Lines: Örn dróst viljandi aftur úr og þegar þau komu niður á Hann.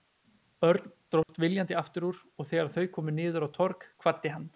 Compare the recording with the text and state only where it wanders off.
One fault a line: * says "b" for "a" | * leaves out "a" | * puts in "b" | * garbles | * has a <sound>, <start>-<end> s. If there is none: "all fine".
* has a dropout, 1.2-1.3 s
* puts in "Torg kvaddi"